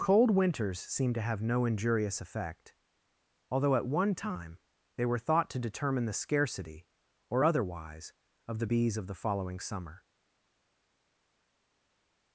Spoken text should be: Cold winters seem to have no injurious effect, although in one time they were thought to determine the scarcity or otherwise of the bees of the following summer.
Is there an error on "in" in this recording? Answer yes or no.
yes